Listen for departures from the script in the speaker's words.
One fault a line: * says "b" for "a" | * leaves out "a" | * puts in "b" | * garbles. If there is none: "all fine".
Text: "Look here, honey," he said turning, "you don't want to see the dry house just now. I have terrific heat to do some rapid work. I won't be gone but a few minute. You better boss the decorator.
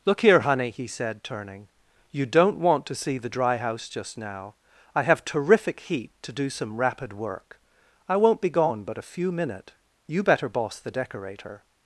all fine